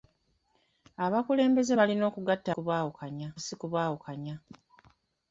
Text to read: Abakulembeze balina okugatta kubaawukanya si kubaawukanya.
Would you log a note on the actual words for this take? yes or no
no